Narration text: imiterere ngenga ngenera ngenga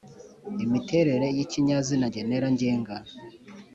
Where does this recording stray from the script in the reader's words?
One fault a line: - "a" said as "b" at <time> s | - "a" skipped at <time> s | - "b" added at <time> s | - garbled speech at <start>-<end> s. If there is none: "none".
- "ngenga" said as "y'ikinyazina" at 1.4 s